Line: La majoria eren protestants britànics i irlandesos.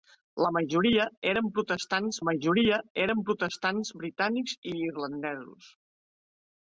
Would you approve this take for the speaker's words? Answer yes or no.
no